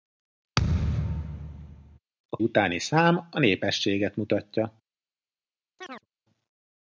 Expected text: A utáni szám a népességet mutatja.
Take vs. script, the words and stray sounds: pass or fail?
fail